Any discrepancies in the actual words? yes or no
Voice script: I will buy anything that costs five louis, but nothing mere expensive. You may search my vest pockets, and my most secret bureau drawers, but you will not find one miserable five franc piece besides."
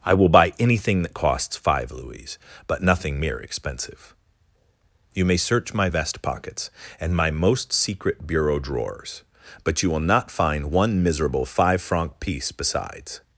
no